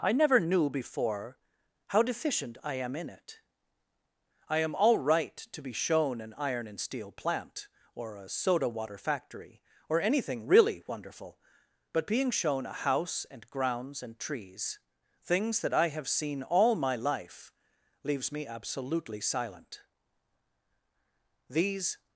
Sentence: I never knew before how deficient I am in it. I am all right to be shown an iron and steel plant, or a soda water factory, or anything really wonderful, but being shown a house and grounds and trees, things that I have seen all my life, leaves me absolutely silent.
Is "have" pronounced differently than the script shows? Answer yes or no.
no